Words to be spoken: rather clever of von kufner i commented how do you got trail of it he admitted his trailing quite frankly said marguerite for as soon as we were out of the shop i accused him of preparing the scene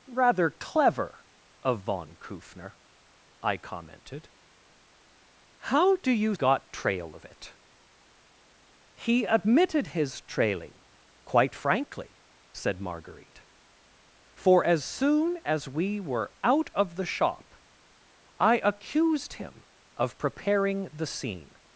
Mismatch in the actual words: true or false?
false